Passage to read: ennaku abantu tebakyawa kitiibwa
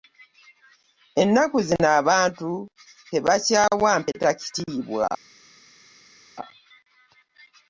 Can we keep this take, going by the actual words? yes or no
no